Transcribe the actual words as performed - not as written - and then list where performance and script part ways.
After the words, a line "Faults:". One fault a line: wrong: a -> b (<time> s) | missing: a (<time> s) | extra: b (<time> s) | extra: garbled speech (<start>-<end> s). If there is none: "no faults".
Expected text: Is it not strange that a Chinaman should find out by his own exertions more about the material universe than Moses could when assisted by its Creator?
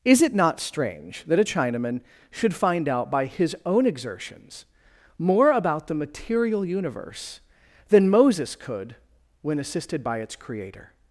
Is it not strange that a Chinaman should find out by his own exertions more about the material universe than Moses could when assisted by its Creator?
Faults:
no faults